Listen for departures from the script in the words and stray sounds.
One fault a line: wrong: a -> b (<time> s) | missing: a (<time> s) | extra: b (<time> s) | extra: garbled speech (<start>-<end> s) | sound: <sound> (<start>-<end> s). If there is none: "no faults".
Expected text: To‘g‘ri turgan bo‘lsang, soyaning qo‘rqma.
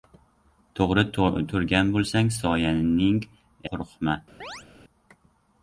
sound: chirp (4.4-4.7 s)